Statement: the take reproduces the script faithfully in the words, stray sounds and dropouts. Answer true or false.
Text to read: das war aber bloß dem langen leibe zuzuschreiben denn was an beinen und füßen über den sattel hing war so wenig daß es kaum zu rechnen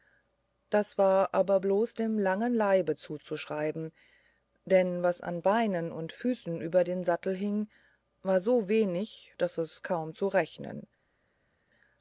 true